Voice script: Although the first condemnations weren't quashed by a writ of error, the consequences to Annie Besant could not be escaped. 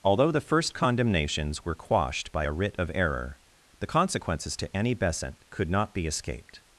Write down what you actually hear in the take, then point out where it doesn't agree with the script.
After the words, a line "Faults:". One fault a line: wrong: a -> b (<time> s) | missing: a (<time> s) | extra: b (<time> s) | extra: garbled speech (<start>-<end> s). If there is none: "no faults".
Although the first condemnations were quashed by a writ of error, the consequences to Annie Besant could not be escaped.
Faults:
wrong: weren't -> were (1.6 s)